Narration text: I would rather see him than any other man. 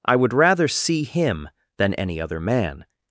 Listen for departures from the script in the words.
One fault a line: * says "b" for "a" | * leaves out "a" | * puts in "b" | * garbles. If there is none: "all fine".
all fine